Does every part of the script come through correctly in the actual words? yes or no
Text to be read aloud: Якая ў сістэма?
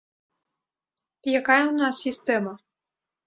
no